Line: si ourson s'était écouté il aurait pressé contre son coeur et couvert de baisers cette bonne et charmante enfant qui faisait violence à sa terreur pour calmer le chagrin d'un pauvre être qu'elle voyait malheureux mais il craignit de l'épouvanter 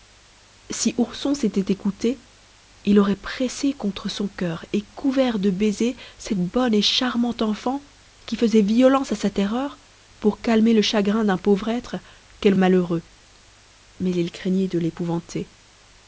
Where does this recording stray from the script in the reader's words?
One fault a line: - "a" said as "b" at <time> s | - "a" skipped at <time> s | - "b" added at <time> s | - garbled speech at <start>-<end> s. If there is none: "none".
- "voyait" skipped at 12.6 s